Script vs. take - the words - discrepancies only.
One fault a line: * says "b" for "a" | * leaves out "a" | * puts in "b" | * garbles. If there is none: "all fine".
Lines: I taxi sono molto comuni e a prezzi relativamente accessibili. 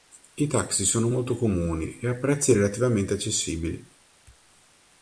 all fine